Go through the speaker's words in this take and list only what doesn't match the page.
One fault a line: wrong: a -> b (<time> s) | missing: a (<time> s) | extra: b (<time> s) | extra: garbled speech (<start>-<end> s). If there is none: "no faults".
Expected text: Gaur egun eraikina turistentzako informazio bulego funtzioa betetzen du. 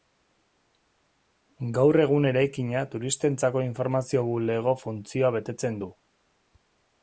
no faults